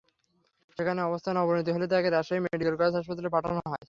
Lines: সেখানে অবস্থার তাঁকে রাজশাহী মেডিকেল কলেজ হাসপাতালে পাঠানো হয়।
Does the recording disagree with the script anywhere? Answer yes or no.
yes